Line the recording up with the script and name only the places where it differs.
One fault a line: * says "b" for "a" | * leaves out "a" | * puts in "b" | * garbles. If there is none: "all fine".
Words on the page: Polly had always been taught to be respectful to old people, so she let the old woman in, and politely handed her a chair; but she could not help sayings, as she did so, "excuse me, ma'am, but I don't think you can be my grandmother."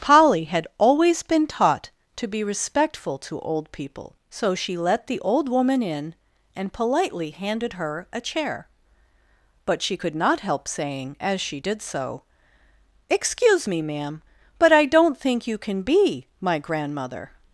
* says "saying" for "sayings"